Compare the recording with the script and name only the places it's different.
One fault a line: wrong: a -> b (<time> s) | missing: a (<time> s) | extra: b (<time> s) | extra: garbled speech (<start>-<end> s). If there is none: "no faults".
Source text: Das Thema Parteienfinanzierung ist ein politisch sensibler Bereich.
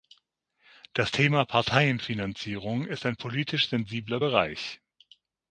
no faults